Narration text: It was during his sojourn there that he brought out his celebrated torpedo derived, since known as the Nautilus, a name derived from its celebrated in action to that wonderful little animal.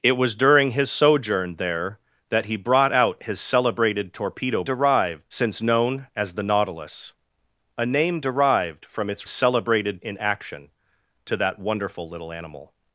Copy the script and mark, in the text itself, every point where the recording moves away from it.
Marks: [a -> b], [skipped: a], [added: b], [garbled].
It was during his sojourn there that he brought out his celebrated torpedo derived, since known as the Nautilus, a name derived from its celebrated in action to that wonderful little animal.